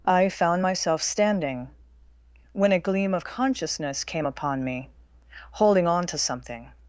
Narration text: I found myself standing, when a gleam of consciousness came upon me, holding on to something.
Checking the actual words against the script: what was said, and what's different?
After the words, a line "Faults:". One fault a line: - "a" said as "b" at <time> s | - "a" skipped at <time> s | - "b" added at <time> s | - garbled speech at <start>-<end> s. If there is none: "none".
I found myself standing, when a gleam of consciousness came upon me, holding on to something.
Faults:
none